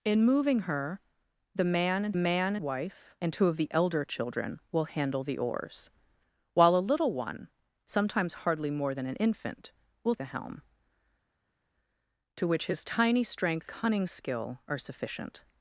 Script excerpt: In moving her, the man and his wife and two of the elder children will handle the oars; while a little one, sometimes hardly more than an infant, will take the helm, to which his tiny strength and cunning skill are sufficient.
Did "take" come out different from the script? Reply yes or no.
yes